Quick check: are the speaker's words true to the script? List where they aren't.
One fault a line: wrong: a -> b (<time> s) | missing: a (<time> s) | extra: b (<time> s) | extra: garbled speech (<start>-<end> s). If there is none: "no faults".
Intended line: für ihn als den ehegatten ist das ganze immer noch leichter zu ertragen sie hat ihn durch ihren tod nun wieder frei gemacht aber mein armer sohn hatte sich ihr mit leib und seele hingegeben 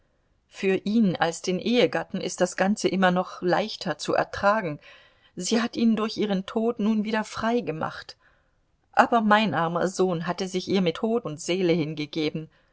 wrong: leib -> tod (10.9 s)